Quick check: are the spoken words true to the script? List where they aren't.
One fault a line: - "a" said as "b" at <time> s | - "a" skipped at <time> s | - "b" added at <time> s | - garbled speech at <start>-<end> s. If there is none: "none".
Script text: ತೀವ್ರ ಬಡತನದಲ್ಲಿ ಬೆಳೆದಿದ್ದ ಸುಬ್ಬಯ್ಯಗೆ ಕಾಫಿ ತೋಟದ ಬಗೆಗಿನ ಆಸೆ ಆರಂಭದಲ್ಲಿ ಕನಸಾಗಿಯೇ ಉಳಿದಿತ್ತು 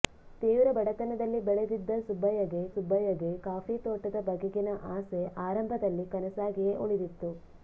- "ಸುಬ್ಬಯ್ಯಗೆ" added at 2.7 s